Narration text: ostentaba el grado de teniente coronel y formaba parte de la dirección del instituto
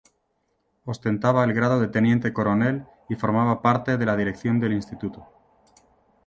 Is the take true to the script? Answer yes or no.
yes